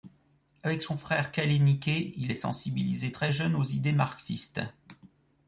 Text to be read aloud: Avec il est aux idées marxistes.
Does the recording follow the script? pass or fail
fail